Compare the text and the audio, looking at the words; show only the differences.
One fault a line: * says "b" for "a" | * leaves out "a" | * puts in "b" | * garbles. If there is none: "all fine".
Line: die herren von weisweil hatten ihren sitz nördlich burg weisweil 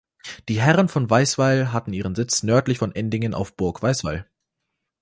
* puts in "von endingen auf"